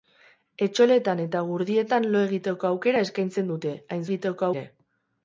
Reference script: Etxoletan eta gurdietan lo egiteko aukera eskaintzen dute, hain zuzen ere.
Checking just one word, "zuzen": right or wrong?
wrong